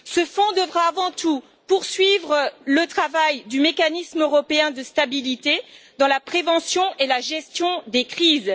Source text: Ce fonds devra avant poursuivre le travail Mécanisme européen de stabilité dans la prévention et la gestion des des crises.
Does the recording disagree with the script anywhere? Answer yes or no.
yes